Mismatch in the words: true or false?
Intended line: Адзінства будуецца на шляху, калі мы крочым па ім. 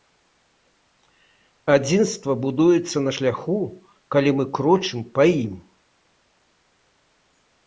false